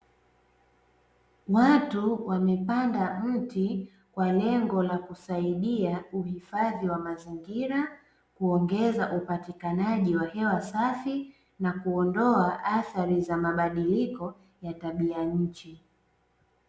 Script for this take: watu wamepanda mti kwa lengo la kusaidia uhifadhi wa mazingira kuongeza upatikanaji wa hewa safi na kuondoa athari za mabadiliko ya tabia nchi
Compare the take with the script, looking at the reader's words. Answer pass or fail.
pass